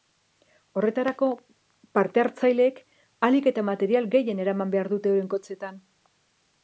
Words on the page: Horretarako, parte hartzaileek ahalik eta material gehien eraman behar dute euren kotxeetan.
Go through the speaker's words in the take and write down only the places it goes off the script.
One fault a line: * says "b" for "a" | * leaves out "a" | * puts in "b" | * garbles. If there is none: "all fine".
all fine